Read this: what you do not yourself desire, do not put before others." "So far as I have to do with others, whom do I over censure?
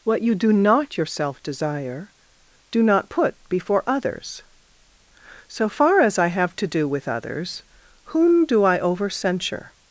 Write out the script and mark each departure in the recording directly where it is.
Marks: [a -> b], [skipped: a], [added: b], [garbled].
what you do not yourself desire, do not put before others." "So far as I have to do with others, whom do I over censure?